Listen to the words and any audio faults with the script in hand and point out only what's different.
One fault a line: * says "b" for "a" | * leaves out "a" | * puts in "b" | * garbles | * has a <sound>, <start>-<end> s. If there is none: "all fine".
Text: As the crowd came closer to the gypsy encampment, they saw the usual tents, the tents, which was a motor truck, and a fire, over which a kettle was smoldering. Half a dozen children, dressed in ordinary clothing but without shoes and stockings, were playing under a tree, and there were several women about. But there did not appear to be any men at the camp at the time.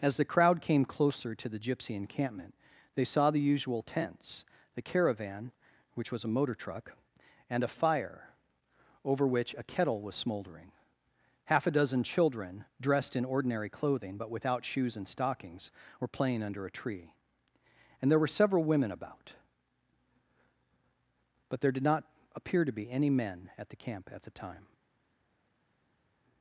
* says "caravan" for "tents"